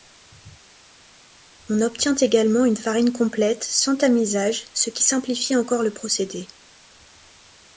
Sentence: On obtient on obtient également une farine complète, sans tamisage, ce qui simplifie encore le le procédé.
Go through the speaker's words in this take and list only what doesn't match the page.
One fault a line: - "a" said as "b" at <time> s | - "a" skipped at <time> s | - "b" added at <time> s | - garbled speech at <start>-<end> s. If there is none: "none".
- "on obtient" skipped at 2.2 s
- "le" skipped at 5.9 s